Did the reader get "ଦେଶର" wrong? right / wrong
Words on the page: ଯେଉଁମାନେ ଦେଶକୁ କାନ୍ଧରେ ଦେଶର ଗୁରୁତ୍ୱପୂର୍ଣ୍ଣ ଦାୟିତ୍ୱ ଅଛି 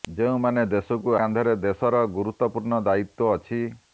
right